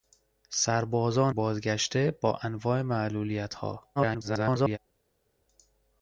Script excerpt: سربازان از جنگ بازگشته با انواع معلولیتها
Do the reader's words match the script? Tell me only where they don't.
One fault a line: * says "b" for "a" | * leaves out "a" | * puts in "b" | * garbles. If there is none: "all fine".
* leaves out "از جنگ"
* garbles